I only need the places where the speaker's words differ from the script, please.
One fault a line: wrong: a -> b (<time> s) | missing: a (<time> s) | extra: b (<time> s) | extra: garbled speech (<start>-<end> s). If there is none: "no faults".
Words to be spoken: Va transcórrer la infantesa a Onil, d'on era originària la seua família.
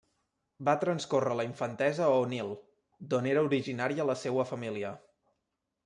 no faults